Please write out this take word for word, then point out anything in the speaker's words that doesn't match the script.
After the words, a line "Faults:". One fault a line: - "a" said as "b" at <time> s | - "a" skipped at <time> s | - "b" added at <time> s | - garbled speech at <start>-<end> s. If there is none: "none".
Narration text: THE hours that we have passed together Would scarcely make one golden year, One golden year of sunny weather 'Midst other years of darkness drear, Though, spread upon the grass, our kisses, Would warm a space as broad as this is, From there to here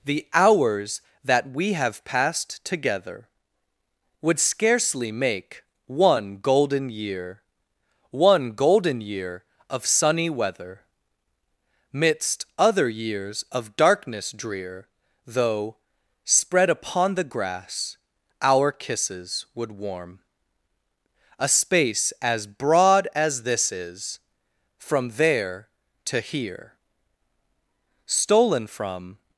THE hours that we have passed together Would scarcely make one golden year, One golden year of sunny weather 'Midst other years of darkness drear, Though, spread upon the grass, our kisses, Would warm a space as broad as this is, From there to here Stolen from
Faults:
- "Stolen from" added at 28.0 s